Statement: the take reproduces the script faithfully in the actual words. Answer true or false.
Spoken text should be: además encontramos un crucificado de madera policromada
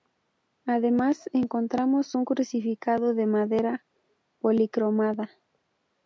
true